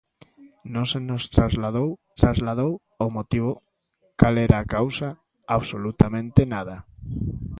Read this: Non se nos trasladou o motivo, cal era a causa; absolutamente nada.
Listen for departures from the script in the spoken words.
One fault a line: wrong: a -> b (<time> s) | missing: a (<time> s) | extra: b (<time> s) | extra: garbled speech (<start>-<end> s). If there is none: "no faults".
extra: trasladou (2.2 s)